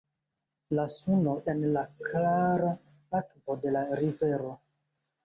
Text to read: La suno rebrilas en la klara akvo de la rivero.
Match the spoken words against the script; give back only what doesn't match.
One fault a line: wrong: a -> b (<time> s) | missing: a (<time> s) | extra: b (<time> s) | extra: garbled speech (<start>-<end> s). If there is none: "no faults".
missing: rebrilas (1.4 s)